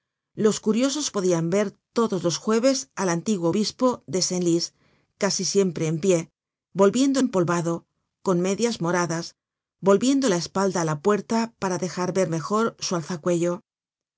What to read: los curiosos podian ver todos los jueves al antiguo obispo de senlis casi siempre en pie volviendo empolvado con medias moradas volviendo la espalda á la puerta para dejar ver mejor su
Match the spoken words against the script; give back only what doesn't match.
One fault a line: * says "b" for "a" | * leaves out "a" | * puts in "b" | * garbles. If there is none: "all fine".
all fine